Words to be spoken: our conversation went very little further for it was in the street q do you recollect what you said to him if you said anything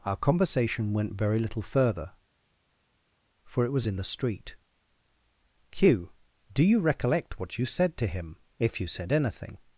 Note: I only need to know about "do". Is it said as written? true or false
true